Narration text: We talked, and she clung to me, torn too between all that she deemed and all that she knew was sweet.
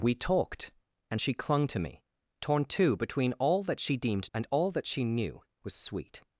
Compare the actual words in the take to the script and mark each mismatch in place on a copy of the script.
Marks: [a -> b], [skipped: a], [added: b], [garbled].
We talked, and she clung to me, torn too between all that she deemed and all that she knew was sweet.